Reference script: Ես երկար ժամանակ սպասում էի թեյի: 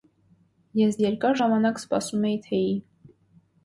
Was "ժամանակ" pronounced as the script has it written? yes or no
yes